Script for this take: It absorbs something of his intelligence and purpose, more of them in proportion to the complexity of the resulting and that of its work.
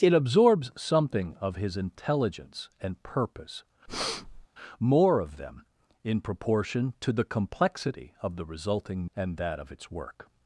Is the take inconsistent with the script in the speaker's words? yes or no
no